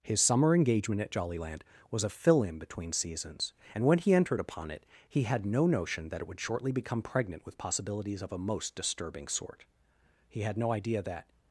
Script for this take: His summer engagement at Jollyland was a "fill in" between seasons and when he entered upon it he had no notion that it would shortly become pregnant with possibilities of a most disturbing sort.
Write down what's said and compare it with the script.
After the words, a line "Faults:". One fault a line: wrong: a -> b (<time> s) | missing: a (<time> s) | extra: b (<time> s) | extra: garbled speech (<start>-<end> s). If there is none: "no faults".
His summer engagement at Jollyland was a "fill in" between seasons and when he entered upon it he had no notion that it would shortly become pregnant with possibilities of a most disturbing sort. He had no idea that
Faults:
extra: He had no idea that (10.3 s)